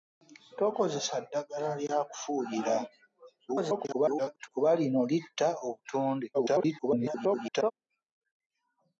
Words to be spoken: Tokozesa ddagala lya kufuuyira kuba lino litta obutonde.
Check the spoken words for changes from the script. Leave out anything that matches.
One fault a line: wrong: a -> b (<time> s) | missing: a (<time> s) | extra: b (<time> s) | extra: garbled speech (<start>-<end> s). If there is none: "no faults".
extra: garbled speech (3.5-4.5 s)
extra: garbled speech (6.3-7.7 s)